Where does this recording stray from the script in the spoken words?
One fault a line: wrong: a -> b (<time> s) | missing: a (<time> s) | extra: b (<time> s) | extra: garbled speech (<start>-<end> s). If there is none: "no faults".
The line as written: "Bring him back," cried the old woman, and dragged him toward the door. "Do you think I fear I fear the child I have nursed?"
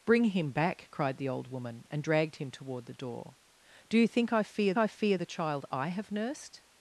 no faults